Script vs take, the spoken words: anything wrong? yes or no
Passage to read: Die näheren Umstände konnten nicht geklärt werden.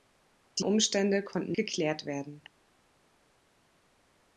yes